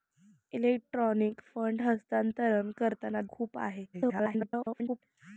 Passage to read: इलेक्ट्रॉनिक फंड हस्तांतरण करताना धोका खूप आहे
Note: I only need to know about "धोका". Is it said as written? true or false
false